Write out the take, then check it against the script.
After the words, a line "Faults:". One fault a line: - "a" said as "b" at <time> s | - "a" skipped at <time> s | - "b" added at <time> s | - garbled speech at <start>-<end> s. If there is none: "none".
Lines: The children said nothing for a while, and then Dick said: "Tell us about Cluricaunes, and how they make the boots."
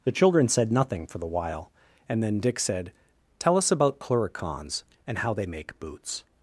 The children said nothing for the while, and then Dick said: "Tell us about Cluricaunes, and how they make boots."
Faults:
- "a" said as "the" at 1.2 s
- "the" skipped at 5.8 s